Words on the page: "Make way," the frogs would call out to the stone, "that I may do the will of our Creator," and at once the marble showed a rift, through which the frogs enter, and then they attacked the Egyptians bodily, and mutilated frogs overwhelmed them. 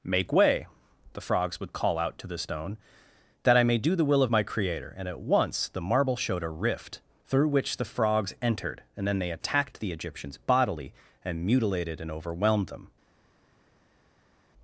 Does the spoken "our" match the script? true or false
false